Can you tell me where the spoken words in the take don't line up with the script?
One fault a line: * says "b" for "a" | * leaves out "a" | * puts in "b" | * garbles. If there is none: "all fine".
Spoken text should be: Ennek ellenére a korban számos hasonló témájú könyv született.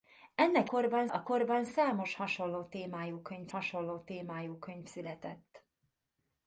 * says "korban" for "ellenére"
* puts in "hasonló témájú könyv"